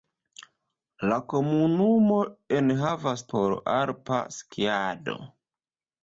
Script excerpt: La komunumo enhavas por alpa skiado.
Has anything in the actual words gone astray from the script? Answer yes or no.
no